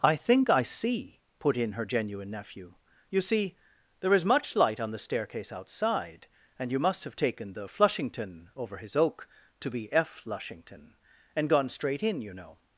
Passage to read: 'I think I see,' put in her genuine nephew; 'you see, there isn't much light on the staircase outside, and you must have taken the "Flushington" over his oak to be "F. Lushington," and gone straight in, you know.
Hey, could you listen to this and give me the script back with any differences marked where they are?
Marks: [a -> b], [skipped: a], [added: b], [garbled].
'I think I see,' put in her genuine nephew; 'you see, there [isn't -> is] much light on the staircase outside, and you must have taken the "Flushington" over his oak to be "F. Lushington," and gone straight in, you know.